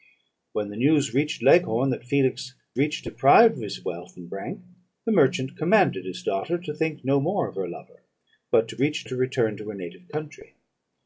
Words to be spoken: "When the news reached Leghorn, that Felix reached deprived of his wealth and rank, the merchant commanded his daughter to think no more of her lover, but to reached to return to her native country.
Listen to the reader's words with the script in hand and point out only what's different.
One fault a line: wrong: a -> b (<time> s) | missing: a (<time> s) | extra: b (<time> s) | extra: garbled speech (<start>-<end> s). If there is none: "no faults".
no faults